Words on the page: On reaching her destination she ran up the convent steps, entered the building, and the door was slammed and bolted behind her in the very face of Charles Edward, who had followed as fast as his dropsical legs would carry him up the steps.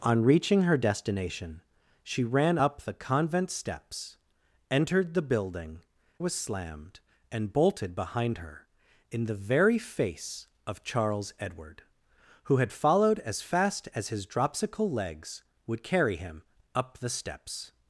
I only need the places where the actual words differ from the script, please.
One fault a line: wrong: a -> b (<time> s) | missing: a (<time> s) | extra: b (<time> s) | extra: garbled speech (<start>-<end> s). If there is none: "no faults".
missing: and the door (5.8 s)